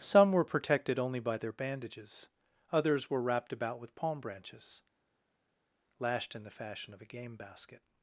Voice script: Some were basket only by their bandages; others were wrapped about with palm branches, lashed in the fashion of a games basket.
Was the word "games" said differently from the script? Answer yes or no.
yes